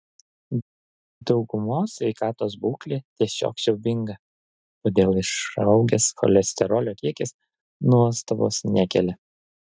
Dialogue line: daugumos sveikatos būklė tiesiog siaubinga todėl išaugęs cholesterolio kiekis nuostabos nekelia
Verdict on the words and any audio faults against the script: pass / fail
pass